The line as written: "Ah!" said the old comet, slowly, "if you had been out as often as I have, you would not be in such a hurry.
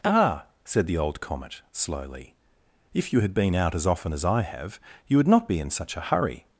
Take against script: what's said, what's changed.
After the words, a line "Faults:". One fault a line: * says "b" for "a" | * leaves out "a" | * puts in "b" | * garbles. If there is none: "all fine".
"Ah!" said the old comet, slowly, "if you had been out as often as I have, you would not be in such a hurry.
Faults:
all fine